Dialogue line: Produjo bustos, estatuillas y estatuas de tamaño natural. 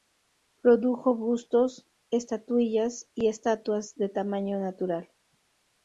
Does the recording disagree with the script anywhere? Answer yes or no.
no